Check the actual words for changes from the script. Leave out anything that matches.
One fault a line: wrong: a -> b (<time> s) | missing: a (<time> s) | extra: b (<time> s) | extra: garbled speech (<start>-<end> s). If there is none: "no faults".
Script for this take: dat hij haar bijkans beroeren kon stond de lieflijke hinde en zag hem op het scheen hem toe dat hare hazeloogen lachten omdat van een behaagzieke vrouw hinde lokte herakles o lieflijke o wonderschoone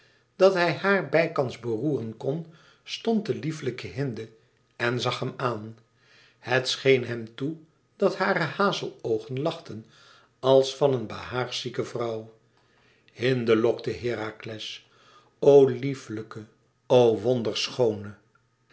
wrong: op -> aan (5.4 s)
wrong: omdat -> als (10.4 s)